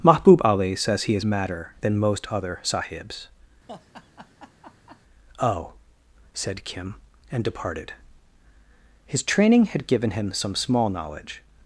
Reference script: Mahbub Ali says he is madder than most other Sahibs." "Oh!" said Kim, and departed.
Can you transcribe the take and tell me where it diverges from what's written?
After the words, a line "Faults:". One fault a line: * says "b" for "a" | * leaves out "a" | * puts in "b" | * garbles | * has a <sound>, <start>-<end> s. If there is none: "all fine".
Mahbub Ali says he is madder than most other Sahibs." "Oh!" said Kim, and departed. His training had given him some small knowledge
Faults:
* has a laugh, 3.7-5.0 s
* puts in "His training had given him some small knowledge"